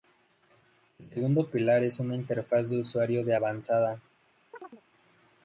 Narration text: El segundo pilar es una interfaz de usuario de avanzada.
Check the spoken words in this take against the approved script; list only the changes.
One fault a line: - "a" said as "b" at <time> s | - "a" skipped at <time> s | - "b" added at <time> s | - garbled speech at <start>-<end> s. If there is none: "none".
none